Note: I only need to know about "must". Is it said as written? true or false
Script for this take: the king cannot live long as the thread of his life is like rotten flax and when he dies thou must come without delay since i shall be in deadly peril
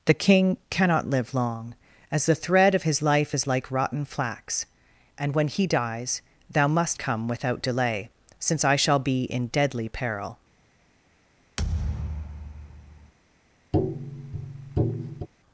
true